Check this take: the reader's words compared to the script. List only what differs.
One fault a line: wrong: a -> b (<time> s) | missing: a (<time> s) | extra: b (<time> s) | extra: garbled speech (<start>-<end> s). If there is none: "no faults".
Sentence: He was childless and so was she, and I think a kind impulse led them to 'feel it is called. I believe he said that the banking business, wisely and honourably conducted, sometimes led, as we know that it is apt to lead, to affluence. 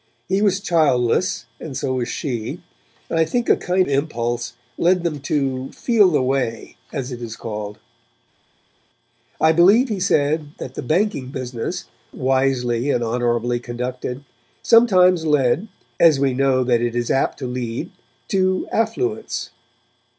extra: the way as (6.1 s)